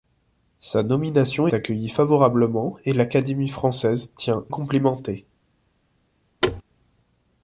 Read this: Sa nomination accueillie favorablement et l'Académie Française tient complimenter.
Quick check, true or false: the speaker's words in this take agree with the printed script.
true